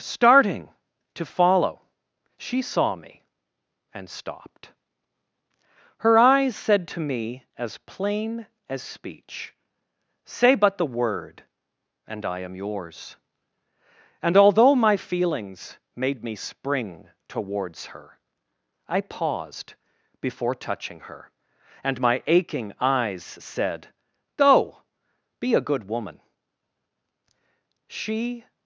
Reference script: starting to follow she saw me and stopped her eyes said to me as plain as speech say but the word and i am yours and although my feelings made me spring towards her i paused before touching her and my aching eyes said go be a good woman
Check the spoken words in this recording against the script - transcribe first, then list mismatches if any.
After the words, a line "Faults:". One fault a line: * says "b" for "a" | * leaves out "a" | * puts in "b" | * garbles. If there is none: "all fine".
starting to follow she saw me and stopped her eyes said to me as plain as speech say but the word and i am yours and although my feelings made me spring towards her i paused before touching her and my aching eyes said go be a good woman she
Faults:
* puts in "she"